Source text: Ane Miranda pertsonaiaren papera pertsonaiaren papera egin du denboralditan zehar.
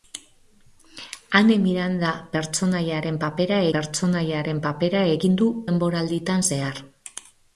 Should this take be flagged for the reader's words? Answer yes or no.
no